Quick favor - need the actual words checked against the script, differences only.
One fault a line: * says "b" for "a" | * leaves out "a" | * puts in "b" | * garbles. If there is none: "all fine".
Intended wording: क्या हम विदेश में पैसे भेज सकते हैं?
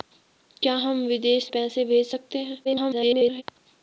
* leaves out "में"
* garbles